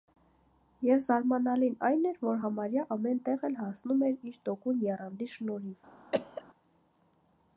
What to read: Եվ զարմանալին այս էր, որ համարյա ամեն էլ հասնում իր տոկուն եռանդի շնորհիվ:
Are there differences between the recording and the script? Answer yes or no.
yes